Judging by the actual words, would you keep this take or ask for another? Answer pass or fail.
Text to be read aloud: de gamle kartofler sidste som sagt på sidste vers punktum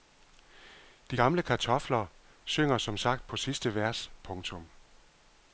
fail